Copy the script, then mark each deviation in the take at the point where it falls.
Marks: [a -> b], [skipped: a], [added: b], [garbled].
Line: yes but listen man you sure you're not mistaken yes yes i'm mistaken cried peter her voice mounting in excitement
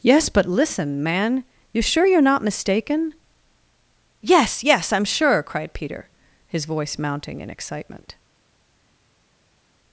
yes but listen man you sure you're not mistaken yes yes i'm [mistaken -> sure] cried peter [her -> his] voice mounting in excitement